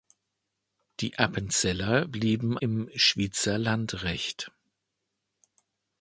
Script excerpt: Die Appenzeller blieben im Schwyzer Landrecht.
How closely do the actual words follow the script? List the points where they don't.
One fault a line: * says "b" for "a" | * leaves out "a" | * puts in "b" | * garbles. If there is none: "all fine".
all fine